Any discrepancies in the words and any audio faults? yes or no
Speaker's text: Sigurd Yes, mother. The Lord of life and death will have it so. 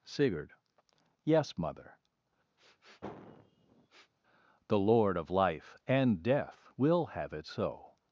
yes